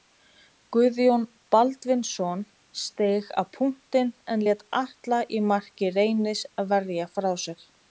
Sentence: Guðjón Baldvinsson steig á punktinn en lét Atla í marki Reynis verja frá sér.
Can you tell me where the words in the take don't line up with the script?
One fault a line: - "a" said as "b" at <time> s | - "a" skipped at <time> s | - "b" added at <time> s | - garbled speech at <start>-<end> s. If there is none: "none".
none